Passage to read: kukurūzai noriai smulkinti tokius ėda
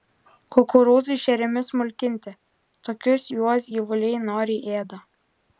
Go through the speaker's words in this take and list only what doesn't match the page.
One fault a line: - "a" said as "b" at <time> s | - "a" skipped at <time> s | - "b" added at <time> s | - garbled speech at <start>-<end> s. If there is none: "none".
- "noriai" said as "šeriami" at 1.2 s
- "juos gyvuliai noriai" added at 3.3 s